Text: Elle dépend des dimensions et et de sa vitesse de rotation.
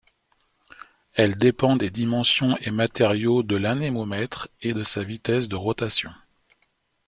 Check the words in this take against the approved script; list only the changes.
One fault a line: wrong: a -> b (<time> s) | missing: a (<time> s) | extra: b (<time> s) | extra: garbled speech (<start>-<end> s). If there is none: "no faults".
extra: matériaux de l'anémomètre (2.7 s)